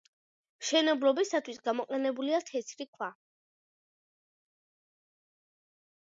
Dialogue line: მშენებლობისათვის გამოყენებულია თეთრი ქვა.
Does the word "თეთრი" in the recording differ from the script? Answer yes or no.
no